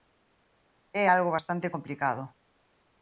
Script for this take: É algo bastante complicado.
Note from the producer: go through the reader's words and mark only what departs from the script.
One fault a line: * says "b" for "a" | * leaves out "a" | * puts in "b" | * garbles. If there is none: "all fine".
all fine